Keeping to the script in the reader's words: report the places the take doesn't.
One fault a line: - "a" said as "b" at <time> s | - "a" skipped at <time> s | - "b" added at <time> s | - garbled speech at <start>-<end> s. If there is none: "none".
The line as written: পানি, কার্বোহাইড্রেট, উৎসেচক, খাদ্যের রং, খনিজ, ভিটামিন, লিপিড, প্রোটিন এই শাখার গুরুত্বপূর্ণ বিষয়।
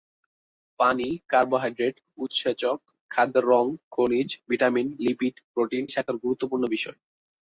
- "এই" skipped at 5.8 s